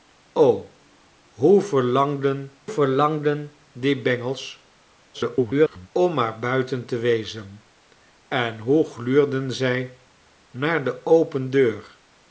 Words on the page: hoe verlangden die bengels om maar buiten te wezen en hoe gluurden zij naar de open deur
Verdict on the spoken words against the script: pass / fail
fail